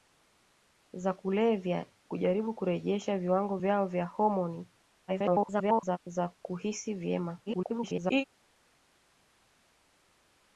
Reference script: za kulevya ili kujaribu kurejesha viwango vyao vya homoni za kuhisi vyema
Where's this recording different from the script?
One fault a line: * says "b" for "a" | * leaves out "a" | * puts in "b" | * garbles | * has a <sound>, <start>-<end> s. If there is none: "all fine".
* leaves out "ili"
* garbles
* garbles